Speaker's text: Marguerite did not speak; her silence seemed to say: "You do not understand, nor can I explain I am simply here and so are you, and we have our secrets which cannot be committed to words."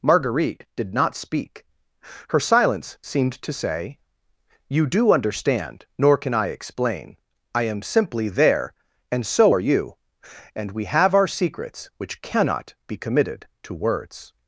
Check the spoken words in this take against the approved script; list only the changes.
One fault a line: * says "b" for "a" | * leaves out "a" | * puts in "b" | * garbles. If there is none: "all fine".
* leaves out "not"
* says "there" for "here"